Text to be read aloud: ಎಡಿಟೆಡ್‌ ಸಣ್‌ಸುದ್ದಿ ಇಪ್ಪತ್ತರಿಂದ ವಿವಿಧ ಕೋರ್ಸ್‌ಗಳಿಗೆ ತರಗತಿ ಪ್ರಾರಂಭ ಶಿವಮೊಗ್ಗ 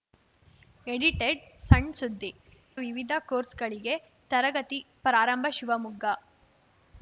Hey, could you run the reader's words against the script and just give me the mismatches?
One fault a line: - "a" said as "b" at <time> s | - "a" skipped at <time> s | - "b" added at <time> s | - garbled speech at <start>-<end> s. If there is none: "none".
- "ಇಪ್ಪತ್ತರಿಂದ" skipped at 2.3 s